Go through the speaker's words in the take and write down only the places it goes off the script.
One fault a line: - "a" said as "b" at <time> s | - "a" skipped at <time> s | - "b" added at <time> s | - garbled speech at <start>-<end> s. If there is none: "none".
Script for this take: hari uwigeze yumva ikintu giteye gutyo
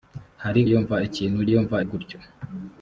- "uwigeze" skipped at 0.6 s
- "giteye" said as "yumva" at 1.5 s